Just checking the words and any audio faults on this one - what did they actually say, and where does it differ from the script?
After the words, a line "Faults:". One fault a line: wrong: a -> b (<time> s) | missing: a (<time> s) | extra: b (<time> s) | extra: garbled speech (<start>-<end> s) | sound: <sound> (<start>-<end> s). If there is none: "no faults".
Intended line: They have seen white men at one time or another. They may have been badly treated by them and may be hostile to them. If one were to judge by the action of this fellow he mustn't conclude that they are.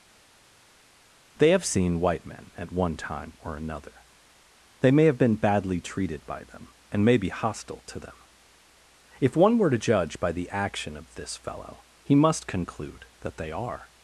They have seen white men at one time or another. They may have been badly treated by them and may be hostile to them. If one were to judge by the action of this fellow he must conclude that they are.
Faults:
wrong: mustn't -> must (12.2 s)